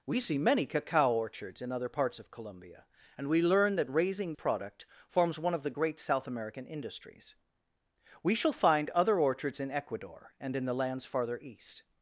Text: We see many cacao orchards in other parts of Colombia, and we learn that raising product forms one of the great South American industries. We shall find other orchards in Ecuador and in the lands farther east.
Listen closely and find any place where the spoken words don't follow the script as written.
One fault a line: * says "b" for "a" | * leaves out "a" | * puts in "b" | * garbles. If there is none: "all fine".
all fine